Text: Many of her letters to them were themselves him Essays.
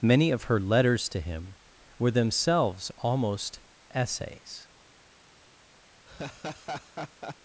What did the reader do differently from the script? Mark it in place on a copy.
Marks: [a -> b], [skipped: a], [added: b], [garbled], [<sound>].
Many of her letters to [them -> him] were themselves [him -> almost] Essays. [laugh]